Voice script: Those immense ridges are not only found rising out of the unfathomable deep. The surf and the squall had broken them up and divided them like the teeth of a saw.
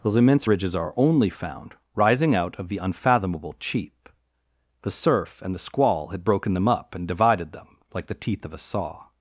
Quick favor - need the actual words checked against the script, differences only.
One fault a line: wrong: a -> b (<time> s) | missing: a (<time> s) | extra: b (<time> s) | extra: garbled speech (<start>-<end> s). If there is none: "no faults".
missing: not (0.9 s)
wrong: deep -> cheap (3.6 s)